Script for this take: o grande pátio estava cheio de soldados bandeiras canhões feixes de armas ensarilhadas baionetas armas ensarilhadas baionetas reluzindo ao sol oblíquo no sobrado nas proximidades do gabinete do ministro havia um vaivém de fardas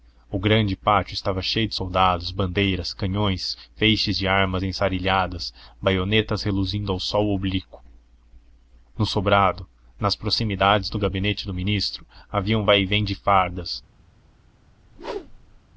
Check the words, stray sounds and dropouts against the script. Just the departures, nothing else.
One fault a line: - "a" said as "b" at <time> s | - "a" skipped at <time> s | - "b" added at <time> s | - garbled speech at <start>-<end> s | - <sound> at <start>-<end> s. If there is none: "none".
- "armas ensarilhadas baionetas" skipped at 6.4 s
- whoosh at 14.9-15.6 s